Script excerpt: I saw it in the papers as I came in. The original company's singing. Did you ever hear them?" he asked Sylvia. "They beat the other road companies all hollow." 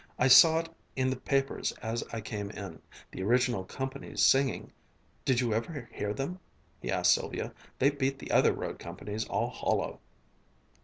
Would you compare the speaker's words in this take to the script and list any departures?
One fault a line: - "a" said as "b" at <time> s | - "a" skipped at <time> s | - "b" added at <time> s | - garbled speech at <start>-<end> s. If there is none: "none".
none